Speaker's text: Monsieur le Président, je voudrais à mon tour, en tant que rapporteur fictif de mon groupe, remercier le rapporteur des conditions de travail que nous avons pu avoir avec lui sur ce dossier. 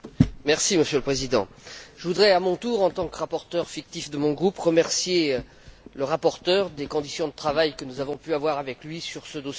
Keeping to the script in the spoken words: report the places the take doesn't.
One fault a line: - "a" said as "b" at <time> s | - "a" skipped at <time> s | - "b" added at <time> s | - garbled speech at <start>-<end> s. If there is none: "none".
none